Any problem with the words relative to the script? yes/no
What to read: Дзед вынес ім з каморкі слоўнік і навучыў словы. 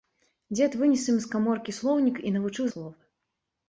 no